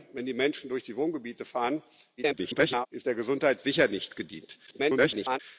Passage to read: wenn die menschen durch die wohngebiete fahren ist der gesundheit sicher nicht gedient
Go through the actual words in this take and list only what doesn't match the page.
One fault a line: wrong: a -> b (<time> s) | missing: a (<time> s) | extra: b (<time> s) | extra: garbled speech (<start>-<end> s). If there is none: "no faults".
extra: garbled speech (2.2-2.9 s)
extra: garbled speech (4.7-5.4 s)